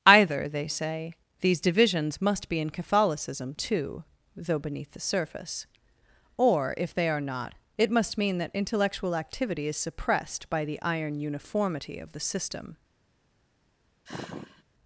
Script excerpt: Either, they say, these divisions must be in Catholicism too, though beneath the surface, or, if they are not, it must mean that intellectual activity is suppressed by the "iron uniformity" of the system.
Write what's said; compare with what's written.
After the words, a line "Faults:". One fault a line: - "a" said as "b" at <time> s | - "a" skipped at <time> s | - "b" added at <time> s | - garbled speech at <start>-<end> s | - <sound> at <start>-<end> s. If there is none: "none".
Either, they say, these divisions must be in Catholicism too, though beneath the surface, or, if they are not, it must mean that intellectual activity is suppressed by the "iron uniformity" of the system.
Faults:
- sigh at 14.1-14.6 s